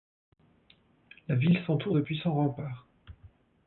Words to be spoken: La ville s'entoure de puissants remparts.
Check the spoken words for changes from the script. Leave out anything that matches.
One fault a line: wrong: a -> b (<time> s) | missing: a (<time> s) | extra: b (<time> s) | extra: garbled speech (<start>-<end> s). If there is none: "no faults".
no faults